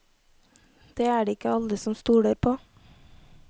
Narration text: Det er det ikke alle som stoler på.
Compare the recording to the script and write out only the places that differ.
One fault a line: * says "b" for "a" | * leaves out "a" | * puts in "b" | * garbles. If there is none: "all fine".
all fine